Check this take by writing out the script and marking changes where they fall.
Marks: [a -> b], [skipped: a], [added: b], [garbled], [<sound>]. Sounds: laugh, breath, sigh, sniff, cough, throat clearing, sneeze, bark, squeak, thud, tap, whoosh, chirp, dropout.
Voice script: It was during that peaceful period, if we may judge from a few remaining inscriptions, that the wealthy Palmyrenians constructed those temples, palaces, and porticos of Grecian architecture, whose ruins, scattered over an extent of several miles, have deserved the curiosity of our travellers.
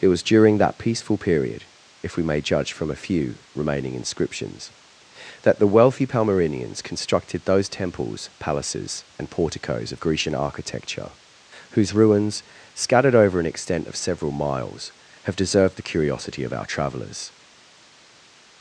It was during that peaceful period, if we may judge from a few remaining inscriptions, that the wealthy Palmyrenians constructed those temples, palaces, and porticos of Grecian architecture, whose ruins, scattered over an extent of several miles, have deserved the curiosity of our travellers.